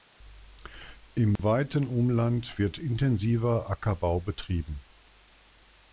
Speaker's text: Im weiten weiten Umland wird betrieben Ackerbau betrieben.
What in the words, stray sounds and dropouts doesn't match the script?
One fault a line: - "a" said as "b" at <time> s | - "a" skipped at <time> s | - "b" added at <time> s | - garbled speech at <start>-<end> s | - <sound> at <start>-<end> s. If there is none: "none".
- dropout at 1.4-1.4 s
- "weiten" skipped at 1.9 s
- "betrieben" said as "intensiver" at 2.8 s